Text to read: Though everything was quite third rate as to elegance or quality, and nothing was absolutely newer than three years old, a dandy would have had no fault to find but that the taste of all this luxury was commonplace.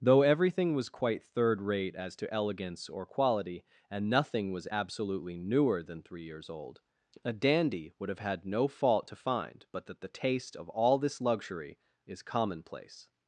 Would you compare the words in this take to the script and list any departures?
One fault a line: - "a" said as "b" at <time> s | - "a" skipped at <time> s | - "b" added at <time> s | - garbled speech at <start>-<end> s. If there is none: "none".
- "was" said as "is" at 12.1 s